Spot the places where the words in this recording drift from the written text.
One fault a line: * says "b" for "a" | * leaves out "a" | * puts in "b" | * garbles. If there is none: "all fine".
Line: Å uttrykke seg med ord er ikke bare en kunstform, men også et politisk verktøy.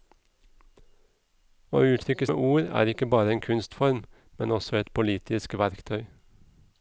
* leaves out "seg"